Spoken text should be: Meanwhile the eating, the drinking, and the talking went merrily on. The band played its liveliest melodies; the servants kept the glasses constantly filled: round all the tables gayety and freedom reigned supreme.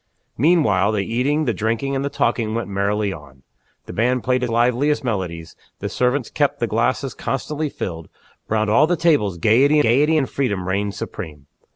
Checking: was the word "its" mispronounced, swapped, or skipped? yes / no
yes